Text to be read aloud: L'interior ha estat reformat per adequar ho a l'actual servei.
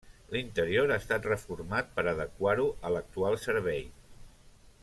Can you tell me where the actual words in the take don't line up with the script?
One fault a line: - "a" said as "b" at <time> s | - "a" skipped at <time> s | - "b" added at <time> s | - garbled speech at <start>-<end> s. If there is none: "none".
none